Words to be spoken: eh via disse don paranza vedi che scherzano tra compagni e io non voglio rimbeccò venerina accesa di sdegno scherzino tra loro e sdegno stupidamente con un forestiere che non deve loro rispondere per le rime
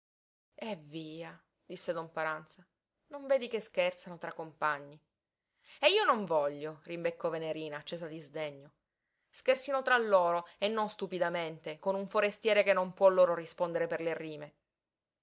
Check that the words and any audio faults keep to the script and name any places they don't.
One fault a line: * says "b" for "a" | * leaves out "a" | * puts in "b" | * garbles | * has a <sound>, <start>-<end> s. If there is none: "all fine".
* puts in "non"
* says "non" for "sdegno"
* says "può" for "deve"